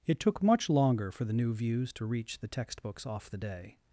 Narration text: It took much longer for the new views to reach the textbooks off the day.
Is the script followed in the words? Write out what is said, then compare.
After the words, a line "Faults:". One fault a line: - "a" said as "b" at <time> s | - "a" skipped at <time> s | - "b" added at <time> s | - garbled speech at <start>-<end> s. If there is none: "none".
It took much longer for the new views to reach the textbooks off the day.
Faults:
none